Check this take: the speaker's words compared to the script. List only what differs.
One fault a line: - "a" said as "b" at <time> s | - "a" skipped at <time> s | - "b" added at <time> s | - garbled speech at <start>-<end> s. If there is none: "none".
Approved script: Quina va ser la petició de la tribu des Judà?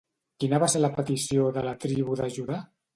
- "des" said as "de" at 2.2 s